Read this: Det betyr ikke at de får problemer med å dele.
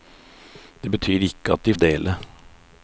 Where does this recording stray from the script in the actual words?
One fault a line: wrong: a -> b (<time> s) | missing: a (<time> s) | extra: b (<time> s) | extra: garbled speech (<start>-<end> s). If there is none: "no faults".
missing: får problemer med (1.7 s)